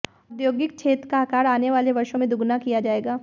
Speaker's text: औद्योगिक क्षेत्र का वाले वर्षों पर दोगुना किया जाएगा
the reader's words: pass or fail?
fail